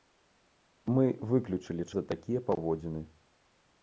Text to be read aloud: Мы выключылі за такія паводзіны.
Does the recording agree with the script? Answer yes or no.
yes